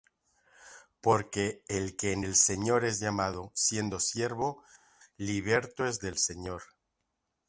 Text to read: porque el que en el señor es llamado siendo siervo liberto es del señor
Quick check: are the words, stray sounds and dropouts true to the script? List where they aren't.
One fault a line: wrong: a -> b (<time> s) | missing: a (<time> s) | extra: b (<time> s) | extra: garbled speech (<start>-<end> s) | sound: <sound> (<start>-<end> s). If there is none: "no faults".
no faults